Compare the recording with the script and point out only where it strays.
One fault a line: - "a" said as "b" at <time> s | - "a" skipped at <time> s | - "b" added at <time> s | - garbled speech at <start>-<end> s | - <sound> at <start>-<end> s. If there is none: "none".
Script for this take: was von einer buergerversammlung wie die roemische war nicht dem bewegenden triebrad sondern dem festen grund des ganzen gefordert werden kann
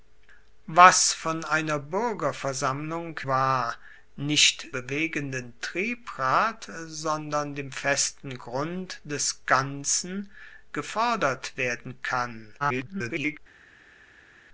- "wie die roemische" skipped at 3.2 s
- "dem" skipped at 4.7 s
- garbled speech at 12.6-13.4 s